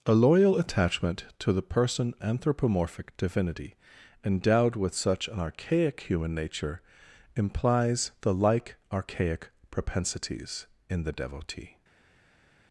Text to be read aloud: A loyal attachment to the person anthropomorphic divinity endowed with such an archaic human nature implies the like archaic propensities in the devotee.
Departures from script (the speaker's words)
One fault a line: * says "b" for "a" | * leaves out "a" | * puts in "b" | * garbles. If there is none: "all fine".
all fine